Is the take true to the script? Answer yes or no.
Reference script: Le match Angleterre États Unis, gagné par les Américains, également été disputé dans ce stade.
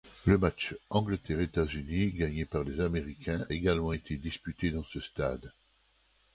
yes